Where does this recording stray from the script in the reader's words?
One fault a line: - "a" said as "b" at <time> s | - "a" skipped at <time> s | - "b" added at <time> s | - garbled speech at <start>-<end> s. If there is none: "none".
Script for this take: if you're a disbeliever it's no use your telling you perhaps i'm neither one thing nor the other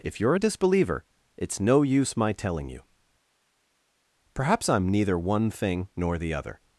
- "your" said as "my" at 2.2 s